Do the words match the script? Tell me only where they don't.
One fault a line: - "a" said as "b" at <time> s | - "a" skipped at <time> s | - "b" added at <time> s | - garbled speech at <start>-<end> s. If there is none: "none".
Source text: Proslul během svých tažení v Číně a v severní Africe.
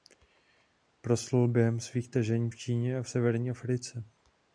none